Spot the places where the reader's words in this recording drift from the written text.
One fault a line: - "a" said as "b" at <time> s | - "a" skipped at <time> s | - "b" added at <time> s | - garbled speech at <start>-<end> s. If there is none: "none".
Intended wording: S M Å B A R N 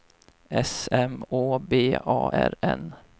none